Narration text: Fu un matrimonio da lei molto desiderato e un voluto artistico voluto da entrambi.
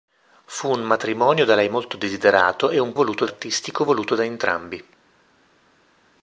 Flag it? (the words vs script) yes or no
no